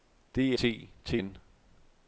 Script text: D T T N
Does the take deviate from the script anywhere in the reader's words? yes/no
no